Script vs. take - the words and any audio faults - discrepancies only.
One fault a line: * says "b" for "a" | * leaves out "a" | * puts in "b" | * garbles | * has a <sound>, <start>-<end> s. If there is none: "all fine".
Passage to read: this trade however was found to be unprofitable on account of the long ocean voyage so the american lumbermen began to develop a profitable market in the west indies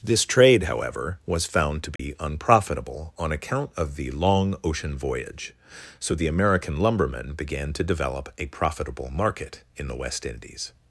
* has a dropout, 2.0-2.0 s